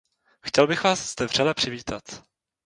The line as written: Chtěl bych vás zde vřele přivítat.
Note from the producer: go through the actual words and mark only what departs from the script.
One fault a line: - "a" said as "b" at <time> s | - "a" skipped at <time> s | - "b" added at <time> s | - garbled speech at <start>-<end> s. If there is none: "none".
none